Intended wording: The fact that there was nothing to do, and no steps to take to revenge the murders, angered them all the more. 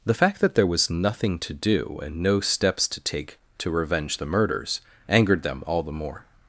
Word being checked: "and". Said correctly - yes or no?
yes